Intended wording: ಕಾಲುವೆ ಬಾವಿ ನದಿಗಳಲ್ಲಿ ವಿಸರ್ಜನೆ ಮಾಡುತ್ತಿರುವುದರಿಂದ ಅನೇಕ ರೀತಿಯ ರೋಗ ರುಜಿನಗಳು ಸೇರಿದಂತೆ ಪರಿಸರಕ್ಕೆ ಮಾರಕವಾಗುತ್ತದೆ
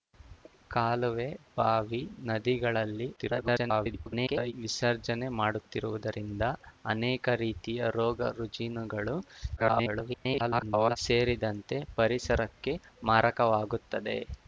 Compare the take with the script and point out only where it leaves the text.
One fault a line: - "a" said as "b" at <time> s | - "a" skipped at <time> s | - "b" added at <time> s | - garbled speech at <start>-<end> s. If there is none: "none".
- garbled speech at 3.2-4.5 s
- garbled speech at 9.6-11.0 s